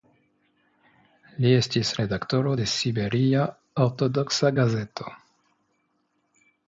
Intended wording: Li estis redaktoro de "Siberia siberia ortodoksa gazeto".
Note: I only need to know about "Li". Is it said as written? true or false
true